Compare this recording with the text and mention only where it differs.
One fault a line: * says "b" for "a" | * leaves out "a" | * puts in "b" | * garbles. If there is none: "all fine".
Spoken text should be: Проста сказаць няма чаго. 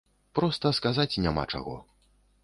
all fine